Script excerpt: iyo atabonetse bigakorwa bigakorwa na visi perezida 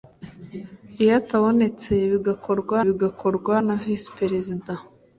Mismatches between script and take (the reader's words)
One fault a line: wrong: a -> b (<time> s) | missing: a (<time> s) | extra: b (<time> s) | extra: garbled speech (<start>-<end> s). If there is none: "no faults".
no faults